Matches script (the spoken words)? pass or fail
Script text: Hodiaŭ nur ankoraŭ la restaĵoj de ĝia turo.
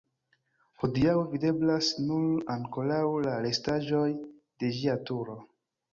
fail